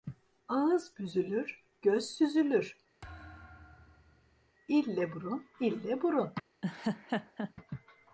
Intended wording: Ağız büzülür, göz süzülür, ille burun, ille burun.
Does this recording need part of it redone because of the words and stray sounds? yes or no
yes